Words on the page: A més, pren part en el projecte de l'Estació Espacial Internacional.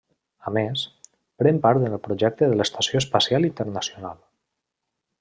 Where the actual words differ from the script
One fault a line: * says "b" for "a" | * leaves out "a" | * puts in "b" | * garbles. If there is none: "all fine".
all fine